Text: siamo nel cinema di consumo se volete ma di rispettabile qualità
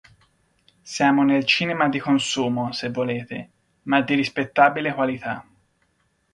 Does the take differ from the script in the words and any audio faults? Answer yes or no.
no